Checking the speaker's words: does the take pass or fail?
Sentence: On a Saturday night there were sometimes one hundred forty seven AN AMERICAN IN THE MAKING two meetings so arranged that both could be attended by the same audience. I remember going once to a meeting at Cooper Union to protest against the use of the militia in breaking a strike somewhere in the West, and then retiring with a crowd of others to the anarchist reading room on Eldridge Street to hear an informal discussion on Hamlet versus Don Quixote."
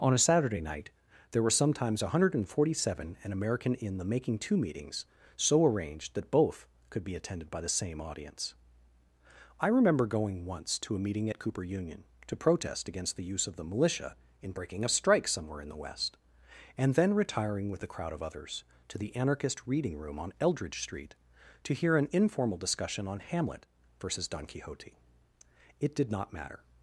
fail